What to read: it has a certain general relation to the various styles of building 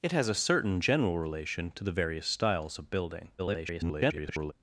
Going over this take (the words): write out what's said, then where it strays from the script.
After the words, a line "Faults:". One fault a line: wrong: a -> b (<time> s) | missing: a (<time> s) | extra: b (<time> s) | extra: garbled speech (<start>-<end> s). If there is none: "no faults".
it has a certain general relation to the various styles of building [garbled]
Faults:
extra: garbled speech (3.4-4.5 s)